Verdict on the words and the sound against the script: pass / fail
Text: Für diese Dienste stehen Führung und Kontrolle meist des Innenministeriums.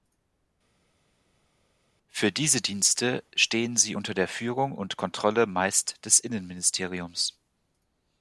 fail